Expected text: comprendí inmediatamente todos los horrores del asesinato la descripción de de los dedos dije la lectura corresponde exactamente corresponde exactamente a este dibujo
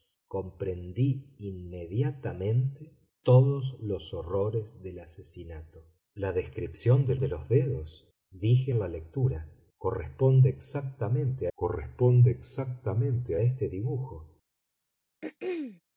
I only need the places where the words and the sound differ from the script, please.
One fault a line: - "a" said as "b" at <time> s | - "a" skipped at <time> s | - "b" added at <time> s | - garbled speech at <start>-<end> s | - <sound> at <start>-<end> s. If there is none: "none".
- throat clearing at 15.2-15.8 s